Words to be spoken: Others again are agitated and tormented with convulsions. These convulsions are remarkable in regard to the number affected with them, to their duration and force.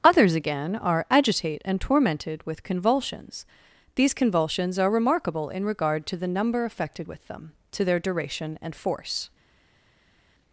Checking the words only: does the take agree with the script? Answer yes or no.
no